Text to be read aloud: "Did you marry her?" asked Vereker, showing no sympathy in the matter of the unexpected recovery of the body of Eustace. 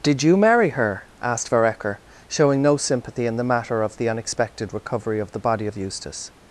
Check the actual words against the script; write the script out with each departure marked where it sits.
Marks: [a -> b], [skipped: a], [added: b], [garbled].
"Did you marry her?" asked Vereker, showing no sympathy in the matter of the unexpected recovery of the body of Eustace.